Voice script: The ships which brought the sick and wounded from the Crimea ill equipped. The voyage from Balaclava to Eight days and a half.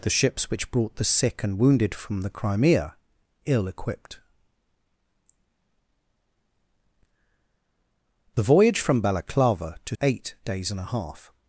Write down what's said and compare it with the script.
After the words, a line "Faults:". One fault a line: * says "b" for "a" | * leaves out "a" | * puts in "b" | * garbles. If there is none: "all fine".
The ships which brought the sick and wounded from the Crimea ill equipped. The voyage from Balaclava to Eight days and a half.
Faults:
all fine